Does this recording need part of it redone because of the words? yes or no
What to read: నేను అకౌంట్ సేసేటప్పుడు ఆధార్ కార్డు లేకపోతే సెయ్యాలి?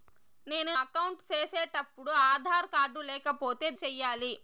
no